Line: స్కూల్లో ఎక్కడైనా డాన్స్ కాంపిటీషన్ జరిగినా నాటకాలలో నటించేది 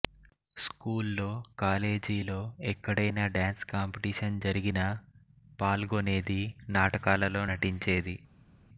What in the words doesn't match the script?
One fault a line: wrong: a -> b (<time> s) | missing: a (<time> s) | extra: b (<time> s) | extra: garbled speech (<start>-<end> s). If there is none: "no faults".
extra: కాలేజీలో (1.6 s)
extra: పాల్గొనేది (5.6 s)